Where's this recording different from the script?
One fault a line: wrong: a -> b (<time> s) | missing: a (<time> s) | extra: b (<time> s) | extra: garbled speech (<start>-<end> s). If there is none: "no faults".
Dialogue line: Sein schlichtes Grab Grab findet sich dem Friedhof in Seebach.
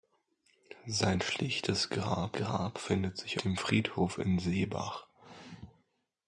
no faults